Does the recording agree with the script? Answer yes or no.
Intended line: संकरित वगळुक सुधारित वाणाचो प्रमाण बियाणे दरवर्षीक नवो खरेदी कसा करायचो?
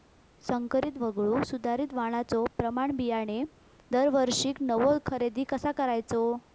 yes